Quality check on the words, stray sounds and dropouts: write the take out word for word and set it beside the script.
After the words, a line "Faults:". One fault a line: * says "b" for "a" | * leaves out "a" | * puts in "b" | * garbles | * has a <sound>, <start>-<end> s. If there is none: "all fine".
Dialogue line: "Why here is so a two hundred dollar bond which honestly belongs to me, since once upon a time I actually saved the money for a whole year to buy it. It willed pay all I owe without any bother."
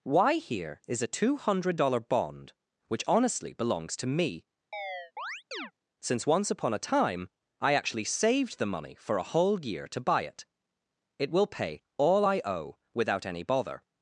"Why here is a two hundred dollar bond which honestly belongs to me, since once upon a time I actually saved the money for a whole year to buy it. It will pay all I owe without any bother."
Faults:
* leaves out "so"
* has a chirp, 4.7-5.7 s
* says "will" for "willed"